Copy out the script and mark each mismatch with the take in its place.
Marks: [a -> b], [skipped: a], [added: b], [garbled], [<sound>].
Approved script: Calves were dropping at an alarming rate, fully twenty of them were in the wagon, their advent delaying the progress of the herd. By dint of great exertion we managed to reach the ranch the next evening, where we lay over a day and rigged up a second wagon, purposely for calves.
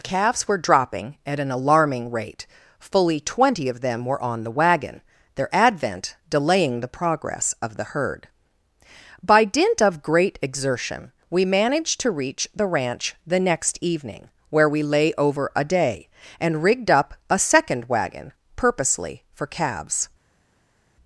Calves were dropping at an alarming rate, fully twenty of them were [in -> on] the wagon, their advent delaying the progress of the herd. By dint of great exertion we managed to reach the ranch the next evening, where we lay over a day and rigged up a second wagon, purposely for calves.